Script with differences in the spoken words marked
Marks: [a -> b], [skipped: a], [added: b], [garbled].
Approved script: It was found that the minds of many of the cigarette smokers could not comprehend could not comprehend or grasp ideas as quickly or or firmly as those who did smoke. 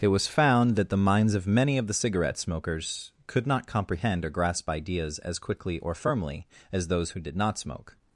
It was found that the minds of many of the cigarette smokers could not comprehend [skipped: could not comprehend] or grasp ideas as quickly or [skipped: or] firmly as those who did [added: not] smoke.